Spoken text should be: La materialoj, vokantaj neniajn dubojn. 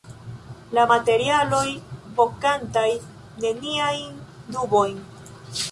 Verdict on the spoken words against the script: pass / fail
pass